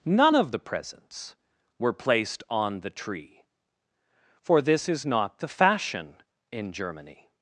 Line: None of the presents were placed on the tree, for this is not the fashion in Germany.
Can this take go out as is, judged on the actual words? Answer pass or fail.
pass